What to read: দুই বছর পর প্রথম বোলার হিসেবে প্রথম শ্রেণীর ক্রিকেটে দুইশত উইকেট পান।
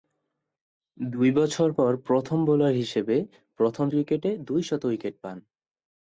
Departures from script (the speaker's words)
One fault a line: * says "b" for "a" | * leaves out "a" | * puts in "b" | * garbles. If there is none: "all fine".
* leaves out "শ্রেণীর"